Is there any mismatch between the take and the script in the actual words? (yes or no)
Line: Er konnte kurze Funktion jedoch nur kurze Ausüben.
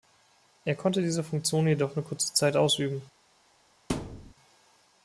yes